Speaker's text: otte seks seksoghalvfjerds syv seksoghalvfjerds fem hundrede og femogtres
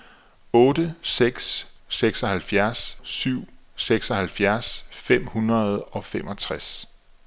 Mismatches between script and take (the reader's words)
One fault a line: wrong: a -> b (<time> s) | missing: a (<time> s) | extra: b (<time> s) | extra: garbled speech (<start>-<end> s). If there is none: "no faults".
no faults